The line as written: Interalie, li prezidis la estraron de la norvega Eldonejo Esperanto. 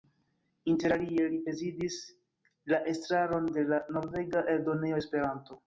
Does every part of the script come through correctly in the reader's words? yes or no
yes